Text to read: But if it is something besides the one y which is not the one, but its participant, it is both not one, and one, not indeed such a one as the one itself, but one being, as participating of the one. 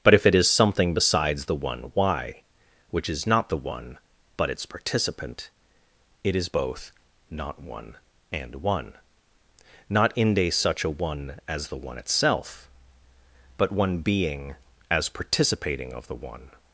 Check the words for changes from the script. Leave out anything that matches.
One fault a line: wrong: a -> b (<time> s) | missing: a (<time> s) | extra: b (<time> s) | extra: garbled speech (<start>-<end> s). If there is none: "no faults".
wrong: indeed -> inde (10.1 s)